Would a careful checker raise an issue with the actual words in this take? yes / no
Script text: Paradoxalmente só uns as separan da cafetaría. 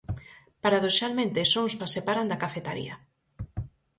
no